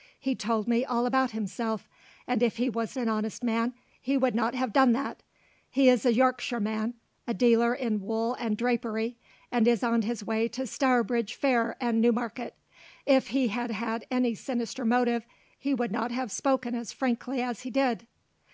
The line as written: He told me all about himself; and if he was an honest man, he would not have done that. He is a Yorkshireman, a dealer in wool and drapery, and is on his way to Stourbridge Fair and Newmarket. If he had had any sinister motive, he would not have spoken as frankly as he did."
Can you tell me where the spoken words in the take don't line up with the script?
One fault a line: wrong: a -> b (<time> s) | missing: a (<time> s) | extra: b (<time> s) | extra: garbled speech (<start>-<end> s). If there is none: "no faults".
no faults